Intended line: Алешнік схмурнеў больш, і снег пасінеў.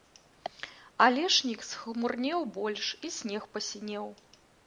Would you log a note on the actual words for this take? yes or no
no